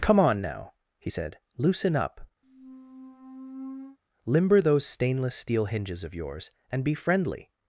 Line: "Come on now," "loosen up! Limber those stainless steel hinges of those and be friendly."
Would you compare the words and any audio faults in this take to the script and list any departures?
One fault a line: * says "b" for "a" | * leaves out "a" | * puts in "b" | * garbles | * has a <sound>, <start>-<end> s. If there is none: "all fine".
* puts in "he said"
* has a squeak, 2.4-4.0 s
* says "yours" for "those"